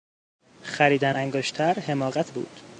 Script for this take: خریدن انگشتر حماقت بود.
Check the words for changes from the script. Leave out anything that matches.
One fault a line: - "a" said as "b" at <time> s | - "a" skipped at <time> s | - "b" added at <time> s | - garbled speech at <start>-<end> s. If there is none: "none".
none